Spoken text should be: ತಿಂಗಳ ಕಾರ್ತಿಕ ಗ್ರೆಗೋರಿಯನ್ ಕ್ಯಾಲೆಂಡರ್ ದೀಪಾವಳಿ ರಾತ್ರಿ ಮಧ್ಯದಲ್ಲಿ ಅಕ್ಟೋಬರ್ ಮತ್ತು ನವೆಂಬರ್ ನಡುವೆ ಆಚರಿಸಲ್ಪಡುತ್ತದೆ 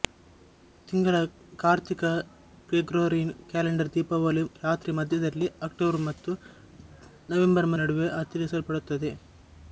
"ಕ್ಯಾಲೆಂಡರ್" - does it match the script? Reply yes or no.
yes